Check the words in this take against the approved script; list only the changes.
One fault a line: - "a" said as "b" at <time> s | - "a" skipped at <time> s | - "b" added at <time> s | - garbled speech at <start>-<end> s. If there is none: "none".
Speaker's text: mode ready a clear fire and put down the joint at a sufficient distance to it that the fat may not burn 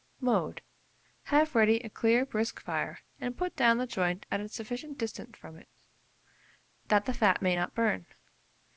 - "have" added at 1.2 s
- "brisk" added at 2.2 s
- "to" said as "from" at 5.4 s